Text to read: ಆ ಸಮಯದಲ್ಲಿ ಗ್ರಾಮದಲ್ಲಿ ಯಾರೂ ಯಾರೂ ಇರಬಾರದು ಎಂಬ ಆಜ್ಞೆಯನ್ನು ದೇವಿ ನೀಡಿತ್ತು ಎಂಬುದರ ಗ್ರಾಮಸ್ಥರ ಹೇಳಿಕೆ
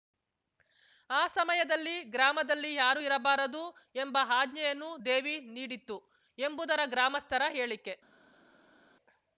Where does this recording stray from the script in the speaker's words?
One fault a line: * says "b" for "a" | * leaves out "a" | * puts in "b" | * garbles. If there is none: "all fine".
* leaves out "ಯಾರೂ"